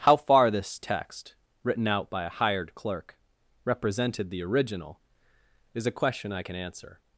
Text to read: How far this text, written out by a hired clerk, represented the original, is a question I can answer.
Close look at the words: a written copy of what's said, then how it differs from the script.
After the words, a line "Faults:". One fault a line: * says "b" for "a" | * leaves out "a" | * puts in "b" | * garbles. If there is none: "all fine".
How far this text, written out by a hired clerk, represented the original, is a question I can answer.
Faults:
all fine